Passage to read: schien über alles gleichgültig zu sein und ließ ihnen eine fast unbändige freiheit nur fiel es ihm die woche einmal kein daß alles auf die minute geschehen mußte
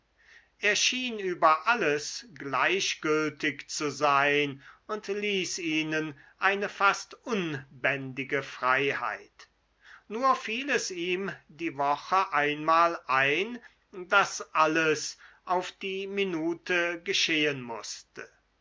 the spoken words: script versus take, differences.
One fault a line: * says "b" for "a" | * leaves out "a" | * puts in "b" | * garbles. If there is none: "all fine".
* says "ein" for "kein"